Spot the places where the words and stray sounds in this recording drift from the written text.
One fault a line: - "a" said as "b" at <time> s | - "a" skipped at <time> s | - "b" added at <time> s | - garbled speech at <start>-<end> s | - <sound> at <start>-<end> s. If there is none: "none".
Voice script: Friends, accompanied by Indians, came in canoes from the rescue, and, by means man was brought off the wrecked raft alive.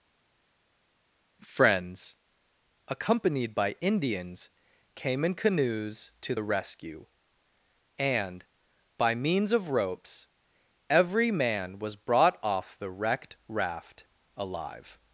- "from" said as "to" at 6.2 s
- "of ropes every" added at 9.5 s